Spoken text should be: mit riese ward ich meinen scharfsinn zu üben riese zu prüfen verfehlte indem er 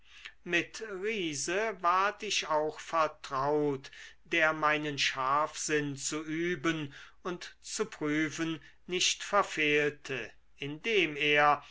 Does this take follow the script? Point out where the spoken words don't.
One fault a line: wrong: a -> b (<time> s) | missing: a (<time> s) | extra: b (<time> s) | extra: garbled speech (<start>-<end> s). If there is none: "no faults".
extra: auch vertraut der (2.5 s)
wrong: riese -> und (7.2 s)
extra: nicht (8.9 s)